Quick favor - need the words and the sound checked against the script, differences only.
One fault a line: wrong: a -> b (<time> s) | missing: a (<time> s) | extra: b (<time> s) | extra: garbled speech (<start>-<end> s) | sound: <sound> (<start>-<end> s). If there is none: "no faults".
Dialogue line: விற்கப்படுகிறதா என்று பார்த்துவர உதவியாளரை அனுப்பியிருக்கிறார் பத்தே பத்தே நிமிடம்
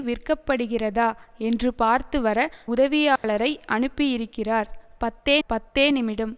sound: dropout (3.2-3.2 s)